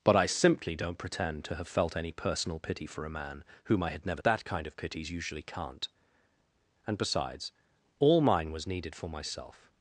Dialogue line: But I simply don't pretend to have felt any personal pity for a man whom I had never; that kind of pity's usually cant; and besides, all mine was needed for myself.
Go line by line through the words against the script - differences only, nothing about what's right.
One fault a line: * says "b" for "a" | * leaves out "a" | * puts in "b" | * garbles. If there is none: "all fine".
all fine